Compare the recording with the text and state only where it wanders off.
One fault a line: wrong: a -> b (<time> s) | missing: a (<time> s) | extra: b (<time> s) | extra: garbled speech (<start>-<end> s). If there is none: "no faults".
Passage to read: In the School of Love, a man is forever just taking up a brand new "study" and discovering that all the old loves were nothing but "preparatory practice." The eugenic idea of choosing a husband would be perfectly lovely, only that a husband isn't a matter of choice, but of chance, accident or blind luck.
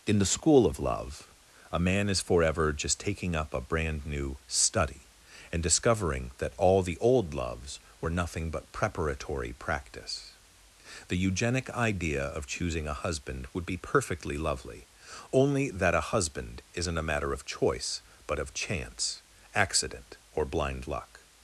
no faults